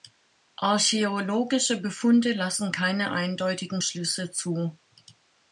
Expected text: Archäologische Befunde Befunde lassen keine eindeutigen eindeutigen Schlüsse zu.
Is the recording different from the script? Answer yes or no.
yes